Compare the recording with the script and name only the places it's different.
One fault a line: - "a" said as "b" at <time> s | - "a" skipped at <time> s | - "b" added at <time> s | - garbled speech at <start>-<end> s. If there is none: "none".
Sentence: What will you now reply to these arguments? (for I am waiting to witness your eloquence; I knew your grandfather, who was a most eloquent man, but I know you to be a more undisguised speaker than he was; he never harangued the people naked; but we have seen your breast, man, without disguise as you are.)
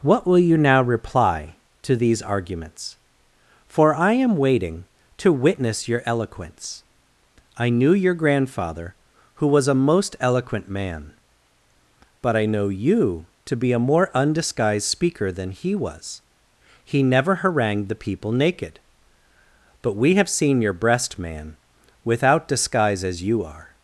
none